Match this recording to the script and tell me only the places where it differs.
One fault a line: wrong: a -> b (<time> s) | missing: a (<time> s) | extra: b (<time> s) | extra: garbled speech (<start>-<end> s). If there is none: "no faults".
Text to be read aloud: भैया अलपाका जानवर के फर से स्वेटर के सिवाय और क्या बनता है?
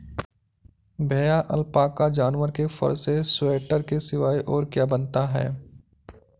no faults